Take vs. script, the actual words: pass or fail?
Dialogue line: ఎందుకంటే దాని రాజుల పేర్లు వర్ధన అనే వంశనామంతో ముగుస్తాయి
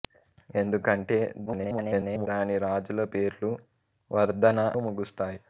fail